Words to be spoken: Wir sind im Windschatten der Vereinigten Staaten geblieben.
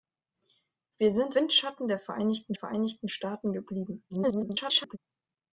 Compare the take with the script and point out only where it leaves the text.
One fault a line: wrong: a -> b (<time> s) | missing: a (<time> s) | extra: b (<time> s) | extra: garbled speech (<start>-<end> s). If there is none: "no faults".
missing: im (1.4 s)
extra: Vereinigten (2.5 s)
extra: garbled speech (4.1-5.0 s)